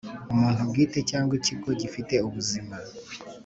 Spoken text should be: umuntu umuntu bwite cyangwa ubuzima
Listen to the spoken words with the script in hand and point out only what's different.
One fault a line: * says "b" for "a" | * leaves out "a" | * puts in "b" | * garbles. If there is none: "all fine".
* leaves out "umuntu"
* puts in "ikigo gifite"